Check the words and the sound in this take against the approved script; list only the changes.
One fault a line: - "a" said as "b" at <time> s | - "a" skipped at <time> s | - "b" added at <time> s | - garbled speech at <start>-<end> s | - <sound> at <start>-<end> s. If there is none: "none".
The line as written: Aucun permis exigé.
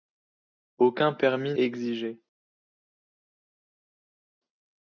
none